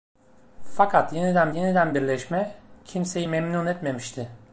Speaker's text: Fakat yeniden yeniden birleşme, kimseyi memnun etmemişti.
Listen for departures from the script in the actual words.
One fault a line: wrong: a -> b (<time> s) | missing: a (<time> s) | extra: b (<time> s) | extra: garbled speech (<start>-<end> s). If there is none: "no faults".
no faults